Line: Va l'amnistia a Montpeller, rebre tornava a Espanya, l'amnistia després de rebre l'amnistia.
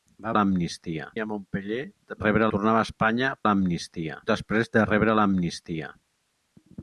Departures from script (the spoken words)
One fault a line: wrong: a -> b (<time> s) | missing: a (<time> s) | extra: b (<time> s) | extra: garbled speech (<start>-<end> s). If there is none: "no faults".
no faults